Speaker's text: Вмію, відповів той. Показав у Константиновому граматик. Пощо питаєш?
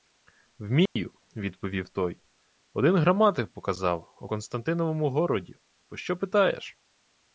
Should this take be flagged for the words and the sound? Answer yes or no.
yes